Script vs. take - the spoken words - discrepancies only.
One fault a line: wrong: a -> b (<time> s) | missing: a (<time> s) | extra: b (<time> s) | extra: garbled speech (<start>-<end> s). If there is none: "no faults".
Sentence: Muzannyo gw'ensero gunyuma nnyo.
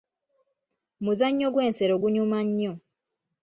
no faults